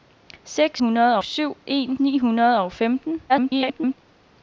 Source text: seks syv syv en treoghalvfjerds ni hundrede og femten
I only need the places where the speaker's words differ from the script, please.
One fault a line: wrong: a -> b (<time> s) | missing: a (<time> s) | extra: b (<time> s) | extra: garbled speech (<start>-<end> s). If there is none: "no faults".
wrong: syv -> hundrede (0.8 s)
missing: treoghalvfjerds (2.0 s)
extra: garbled speech (3.3-4.0 s)